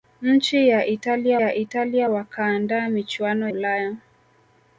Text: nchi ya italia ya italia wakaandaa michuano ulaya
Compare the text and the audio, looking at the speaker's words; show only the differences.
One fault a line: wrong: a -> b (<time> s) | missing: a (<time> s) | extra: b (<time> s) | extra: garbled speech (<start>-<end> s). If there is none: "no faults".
no faults